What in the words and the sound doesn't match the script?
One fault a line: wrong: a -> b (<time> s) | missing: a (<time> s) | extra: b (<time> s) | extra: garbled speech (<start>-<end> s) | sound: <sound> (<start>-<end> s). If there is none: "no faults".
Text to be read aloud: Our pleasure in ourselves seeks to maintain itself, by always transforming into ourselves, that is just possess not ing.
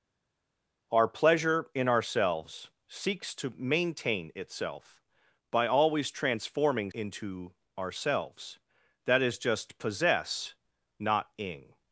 no faults